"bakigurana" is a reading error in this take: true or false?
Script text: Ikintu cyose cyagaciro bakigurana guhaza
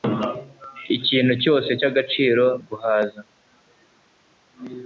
true